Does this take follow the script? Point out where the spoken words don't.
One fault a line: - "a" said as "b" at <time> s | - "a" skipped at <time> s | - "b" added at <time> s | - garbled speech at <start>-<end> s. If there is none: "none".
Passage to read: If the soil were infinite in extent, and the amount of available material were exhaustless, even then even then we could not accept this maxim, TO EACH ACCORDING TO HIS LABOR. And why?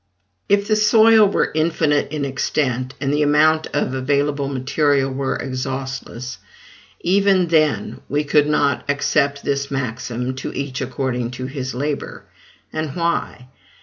- "even then" skipped at 8.0 s